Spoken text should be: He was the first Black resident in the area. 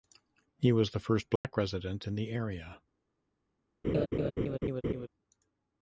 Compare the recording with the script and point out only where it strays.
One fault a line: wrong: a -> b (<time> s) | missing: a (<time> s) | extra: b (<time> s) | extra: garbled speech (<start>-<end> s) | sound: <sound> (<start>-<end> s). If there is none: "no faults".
sound: dropout (1.4-1.4 s)
sound: laugh (3.8-5.1 s)